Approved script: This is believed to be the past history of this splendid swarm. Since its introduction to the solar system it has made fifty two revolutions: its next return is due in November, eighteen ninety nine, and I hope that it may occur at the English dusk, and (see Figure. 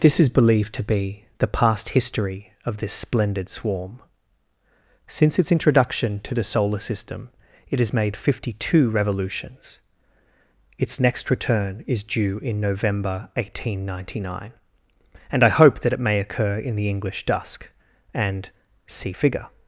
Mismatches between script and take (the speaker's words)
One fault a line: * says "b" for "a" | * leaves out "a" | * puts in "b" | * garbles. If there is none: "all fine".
* says "in" for "at"